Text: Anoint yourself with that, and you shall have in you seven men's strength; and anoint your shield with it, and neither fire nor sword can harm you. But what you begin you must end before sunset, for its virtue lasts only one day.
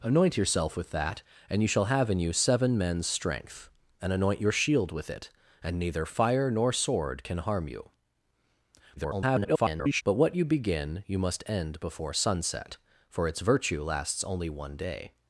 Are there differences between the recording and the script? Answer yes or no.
yes